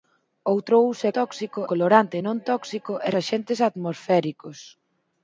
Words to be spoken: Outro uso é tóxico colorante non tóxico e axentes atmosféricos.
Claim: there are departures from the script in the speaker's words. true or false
false